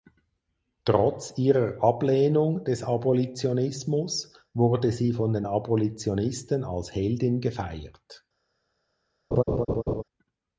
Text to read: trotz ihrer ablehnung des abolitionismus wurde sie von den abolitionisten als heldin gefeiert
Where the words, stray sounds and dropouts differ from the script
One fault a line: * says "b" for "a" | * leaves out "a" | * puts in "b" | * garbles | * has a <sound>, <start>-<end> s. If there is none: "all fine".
* has a laugh, 9.3-10.0 s